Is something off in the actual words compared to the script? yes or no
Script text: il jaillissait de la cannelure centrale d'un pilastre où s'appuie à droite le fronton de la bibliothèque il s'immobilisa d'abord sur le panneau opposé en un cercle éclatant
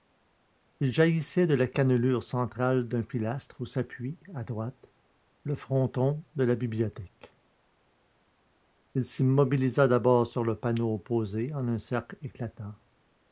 no